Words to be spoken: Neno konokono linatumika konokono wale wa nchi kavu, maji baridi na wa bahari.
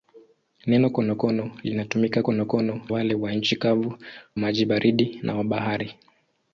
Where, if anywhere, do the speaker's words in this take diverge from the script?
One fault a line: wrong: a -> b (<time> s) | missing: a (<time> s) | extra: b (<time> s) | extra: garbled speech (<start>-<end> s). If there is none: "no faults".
no faults